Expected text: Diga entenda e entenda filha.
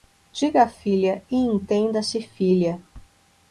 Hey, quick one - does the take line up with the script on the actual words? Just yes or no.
no